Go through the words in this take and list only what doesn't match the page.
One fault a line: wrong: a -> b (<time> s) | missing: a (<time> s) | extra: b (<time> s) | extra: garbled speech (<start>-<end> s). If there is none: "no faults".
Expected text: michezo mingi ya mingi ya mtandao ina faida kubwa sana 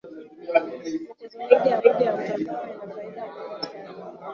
no faults